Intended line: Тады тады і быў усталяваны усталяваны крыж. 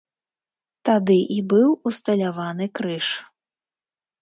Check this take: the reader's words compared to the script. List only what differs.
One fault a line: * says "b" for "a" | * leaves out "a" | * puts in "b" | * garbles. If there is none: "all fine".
* leaves out "тады"
* leaves out "усталяваны"